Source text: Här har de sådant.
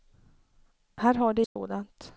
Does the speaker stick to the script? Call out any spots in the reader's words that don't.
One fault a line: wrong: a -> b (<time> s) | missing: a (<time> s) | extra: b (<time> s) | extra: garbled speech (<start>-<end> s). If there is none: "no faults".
no faults